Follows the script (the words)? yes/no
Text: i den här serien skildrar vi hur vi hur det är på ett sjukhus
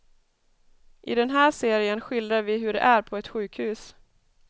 no